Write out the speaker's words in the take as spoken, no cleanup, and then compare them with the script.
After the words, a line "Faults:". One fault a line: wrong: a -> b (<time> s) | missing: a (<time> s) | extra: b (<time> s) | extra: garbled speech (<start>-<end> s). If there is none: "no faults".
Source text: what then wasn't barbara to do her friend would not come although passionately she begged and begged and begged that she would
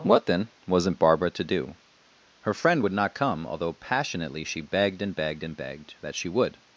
what then wasn't barbara to do her friend would not come although passionately she begged and begged and begged that she would
Faults:
no faults